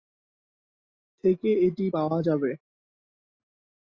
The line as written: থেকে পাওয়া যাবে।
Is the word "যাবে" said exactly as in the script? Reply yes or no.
yes